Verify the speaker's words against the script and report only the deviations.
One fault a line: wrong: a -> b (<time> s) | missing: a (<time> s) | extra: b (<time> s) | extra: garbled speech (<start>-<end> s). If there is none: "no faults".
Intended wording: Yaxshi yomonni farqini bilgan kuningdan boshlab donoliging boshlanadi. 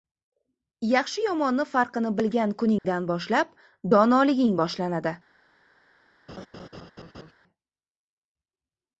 no faults